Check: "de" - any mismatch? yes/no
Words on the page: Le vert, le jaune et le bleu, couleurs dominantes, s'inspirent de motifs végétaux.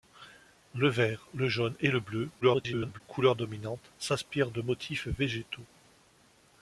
no